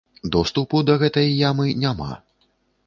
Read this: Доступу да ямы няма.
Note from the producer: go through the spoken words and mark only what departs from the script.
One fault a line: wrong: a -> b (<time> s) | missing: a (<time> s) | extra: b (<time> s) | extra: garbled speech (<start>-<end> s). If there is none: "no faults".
extra: гэтай (1.0 s)